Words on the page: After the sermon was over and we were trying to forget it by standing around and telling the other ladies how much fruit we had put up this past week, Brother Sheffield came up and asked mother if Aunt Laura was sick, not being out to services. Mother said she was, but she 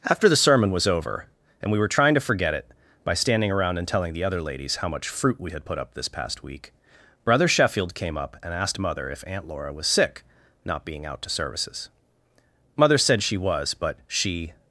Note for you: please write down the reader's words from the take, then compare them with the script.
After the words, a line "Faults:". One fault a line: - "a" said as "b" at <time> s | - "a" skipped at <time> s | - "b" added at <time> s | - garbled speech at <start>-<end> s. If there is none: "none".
After the sermon was over and we were trying to forget it by standing around and telling the other ladies how much fruit we had put up this past week, Brother Sheffield came up and asked mother if Aunt Laura was sick, not being out to services. Mother said she was, but she
Faults:
none